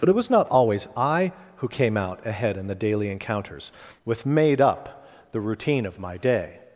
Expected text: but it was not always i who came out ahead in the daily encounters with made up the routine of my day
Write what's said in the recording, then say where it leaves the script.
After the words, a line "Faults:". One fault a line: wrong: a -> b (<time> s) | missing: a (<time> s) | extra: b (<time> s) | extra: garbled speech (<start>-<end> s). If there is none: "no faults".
but it was not always i who came out ahead in the daily encounters with made up the routine of my day
Faults:
no faults